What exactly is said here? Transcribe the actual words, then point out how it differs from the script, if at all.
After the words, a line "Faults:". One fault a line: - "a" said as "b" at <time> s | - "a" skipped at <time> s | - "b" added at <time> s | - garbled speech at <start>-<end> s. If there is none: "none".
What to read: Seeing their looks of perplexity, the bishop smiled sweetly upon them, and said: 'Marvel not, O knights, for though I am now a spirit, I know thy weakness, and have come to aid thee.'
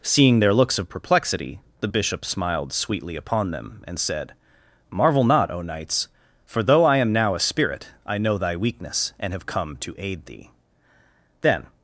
Seeing their looks of perplexity, the bishop smiled sweetly upon them, and said: 'Marvel not, O knights, for though I am now a spirit, I know thy weakness, and have come to aid thee.' Then
Faults:
- "Then" added at 11.4 s